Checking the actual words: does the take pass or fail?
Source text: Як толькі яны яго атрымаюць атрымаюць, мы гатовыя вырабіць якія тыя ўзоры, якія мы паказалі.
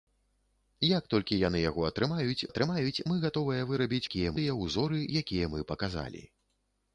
pass